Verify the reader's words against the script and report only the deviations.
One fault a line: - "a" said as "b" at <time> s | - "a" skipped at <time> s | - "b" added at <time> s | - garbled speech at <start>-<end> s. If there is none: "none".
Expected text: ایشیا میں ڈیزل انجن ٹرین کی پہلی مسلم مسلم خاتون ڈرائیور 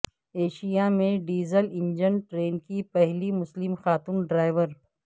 - "مسلم" skipped at 3.8 s